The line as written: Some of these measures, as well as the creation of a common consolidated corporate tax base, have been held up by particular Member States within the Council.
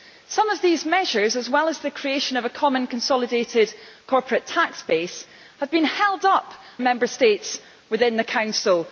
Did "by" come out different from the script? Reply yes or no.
yes